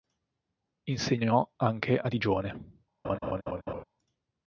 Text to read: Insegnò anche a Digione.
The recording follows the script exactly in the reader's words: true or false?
true